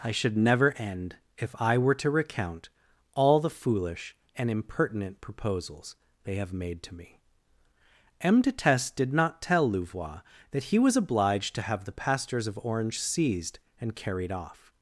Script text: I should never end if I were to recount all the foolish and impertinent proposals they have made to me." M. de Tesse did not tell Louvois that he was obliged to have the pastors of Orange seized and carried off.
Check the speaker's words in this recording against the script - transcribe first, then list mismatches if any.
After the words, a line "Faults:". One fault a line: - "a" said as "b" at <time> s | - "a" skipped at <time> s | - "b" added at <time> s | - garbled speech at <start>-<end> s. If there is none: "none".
I should never end if I were to recount all the foolish and impertinent proposals they have made to me." M. de Tesse did not tell Louvois that he was obliged to have the pastors of Orange seized and carried off.
Faults:
none